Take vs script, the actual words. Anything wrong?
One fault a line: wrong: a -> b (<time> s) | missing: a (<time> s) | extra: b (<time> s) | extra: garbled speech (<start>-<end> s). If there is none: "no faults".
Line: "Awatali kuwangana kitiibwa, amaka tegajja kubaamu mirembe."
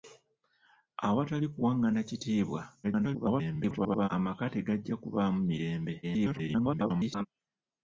extra: garbled speech (2.8-4.1 s)
extra: garbled speech (6.0-7.3 s)